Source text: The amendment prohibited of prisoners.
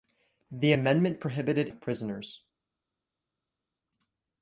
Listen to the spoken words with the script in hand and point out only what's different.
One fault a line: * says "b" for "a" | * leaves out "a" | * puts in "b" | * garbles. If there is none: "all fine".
all fine